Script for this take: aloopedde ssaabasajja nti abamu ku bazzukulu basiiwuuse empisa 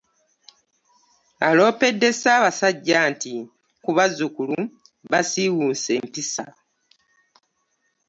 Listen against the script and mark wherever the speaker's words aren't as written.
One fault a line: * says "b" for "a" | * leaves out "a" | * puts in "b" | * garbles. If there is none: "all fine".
* leaves out "abamu"